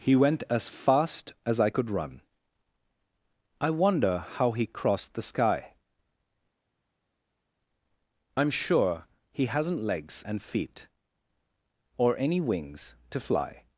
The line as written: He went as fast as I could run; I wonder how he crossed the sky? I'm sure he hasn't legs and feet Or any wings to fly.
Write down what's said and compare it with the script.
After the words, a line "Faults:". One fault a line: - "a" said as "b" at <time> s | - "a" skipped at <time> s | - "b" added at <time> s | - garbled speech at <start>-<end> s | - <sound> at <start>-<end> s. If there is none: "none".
He went as fast as I could run; I wonder how he crossed the sky? I'm sure he hasn't legs and feet Or any wings to fly.
Faults:
none